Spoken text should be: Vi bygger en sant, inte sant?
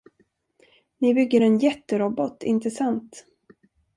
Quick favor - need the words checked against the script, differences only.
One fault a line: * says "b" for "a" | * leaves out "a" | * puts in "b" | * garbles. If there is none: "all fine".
* says "Ni" for "Vi"
* says "jätterobot" for "sant"